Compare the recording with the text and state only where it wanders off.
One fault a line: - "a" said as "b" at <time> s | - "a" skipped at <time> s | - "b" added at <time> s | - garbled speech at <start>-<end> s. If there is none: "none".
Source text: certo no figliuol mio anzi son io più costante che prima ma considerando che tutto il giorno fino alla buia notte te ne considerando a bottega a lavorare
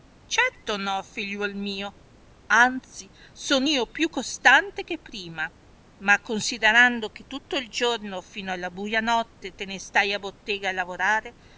- "considerando" said as "stai" at 9.8 s